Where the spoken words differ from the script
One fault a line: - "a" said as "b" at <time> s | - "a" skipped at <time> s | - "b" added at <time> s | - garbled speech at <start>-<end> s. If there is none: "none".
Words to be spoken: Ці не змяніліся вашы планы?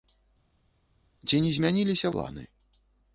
- "вашы" skipped at 2.1 s